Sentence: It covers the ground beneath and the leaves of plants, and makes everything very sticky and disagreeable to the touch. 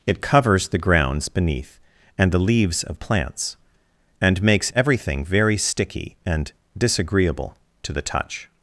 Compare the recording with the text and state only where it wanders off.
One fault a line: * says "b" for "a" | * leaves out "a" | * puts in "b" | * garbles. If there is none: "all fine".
* says "grounds" for "ground"